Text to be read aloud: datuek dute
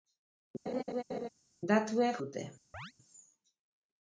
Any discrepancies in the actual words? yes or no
no